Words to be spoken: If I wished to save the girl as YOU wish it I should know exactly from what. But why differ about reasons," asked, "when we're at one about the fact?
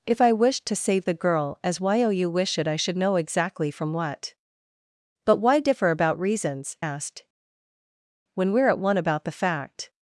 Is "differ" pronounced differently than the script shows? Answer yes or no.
no